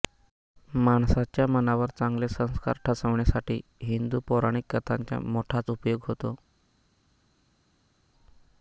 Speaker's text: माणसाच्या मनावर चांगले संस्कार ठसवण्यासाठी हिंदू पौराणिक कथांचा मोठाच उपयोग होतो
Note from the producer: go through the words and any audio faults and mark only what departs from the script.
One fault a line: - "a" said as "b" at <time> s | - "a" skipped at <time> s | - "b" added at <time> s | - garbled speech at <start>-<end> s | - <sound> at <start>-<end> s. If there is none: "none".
none